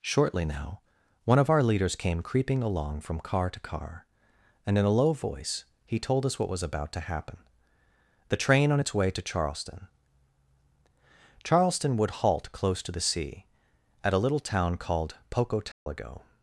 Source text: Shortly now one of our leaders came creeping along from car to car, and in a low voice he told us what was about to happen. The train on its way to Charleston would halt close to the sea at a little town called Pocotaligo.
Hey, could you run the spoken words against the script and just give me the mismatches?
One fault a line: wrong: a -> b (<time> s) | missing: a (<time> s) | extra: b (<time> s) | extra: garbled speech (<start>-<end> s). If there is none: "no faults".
extra: Charleston (11.4 s)